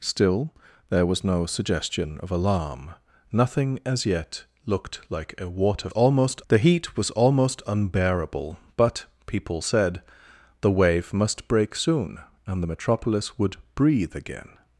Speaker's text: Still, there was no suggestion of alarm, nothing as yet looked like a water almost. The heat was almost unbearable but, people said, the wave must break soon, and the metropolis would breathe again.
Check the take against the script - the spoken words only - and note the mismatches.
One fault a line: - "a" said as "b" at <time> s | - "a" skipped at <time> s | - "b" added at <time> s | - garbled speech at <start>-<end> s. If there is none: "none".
none